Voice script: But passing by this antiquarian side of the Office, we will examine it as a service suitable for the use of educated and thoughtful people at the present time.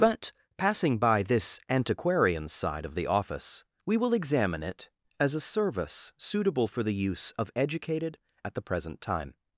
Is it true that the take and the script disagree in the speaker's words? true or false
true